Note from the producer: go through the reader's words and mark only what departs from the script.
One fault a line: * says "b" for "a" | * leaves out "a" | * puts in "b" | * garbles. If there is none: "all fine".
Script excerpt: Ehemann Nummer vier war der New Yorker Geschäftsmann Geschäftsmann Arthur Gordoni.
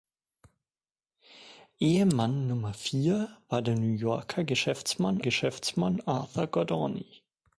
all fine